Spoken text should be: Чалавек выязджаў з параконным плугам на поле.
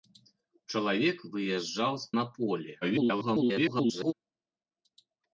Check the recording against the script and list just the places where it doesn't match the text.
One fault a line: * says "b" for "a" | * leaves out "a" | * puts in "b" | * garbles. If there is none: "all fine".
* leaves out "параконным плугам"
* garbles